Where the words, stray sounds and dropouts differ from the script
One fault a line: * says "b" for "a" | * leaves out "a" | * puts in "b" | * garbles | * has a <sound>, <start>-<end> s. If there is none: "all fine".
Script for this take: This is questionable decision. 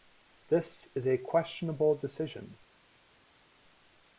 * puts in "a"